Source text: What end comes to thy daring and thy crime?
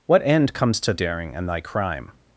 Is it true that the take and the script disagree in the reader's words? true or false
true